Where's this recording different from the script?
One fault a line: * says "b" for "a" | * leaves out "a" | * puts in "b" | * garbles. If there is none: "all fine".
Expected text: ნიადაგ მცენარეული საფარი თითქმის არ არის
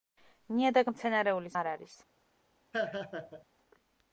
* leaves out "საფარი თითქმის"